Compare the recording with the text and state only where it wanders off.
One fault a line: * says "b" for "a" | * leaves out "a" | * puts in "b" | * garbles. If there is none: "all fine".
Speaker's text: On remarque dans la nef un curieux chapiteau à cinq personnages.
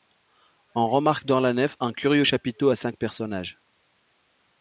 all fine